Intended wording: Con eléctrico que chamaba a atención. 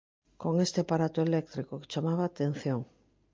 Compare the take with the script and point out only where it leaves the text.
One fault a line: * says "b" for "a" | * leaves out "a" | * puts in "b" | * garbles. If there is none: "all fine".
* puts in "este aparato"